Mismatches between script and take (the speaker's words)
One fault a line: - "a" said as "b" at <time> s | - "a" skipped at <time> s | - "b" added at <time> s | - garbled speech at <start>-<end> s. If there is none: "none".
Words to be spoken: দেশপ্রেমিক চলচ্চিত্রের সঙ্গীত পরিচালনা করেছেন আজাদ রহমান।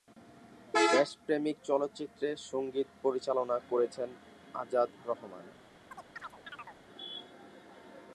none